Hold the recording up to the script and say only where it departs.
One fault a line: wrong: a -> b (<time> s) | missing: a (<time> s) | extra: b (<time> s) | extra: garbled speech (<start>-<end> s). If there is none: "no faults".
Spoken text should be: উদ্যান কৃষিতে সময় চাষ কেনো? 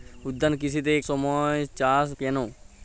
no faults